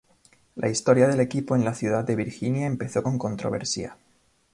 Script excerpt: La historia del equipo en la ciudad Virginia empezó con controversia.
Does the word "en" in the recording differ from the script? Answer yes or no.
no